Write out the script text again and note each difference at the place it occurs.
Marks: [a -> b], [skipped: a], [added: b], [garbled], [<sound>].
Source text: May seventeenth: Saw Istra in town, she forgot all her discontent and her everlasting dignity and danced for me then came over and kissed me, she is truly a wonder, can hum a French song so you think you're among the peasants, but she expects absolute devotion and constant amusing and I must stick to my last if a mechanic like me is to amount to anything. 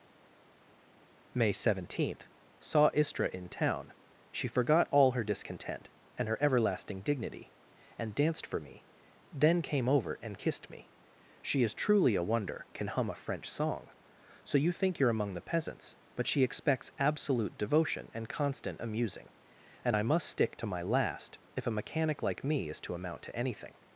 May seventeenth: Saw Istra in town, she forgot all her discontent and her everlasting dignity and danced for me then came over and kissed me, she is truly a wonder, can hum a French song so you think you're among the peasants, but she expects absolute devotion and constant amusing and I must stick to my last if a mechanic like me is to amount to anything.